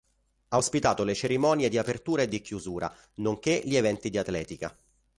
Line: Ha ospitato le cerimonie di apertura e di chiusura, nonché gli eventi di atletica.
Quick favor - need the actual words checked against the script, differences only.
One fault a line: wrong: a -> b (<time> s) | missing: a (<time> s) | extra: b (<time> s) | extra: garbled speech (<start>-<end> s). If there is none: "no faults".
no faults